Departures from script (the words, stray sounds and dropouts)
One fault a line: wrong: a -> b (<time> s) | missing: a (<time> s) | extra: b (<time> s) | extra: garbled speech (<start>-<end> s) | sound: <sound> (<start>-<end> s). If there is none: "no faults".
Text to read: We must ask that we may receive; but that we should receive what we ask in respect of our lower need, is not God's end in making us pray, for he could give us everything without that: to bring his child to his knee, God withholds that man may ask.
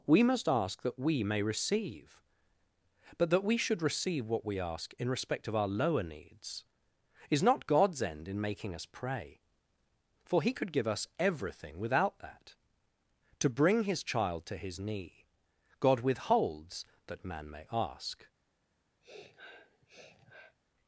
wrong: need -> needs (6.0 s)
sound: sniff (19.0-20.6 s)